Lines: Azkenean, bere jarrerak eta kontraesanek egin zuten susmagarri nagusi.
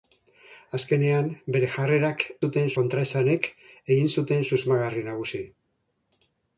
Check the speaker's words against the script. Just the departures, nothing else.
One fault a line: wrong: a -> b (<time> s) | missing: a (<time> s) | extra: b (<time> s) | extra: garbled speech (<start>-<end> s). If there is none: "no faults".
wrong: eta -> zuten (2.4 s)